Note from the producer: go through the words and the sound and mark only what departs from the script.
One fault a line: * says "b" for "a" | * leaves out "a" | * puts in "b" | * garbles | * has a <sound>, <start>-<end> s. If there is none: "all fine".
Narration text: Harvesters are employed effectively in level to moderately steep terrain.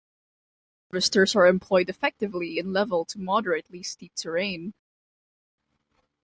all fine